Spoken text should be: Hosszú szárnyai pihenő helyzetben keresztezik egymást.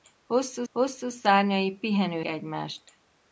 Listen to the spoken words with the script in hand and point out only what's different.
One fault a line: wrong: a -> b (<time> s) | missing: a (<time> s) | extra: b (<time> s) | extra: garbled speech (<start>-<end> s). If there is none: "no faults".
extra: hosszú (0.7 s)
missing: helyzetben keresztezik (2.2 s)